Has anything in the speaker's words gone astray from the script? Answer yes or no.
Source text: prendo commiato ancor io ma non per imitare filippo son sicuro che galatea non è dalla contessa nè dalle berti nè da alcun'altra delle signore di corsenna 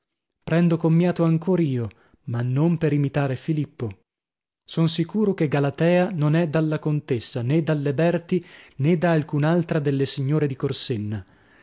no